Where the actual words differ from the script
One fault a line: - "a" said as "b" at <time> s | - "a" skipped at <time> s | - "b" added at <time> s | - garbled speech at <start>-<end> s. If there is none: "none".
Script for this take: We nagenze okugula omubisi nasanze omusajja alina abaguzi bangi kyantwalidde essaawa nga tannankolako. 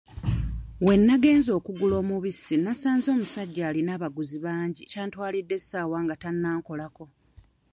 none